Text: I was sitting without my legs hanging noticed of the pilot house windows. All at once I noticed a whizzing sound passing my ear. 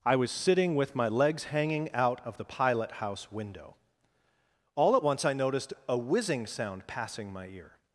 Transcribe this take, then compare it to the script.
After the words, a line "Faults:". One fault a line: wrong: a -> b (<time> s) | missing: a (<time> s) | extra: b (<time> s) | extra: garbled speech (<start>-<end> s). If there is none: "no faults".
I was sitting with my legs hanging out of the pilot house window. All at once I noticed a whizzing sound passing my ear.
Faults:
wrong: without -> with (0.8 s)
wrong: noticed -> out (1.9 s)
wrong: windows -> window (3.3 s)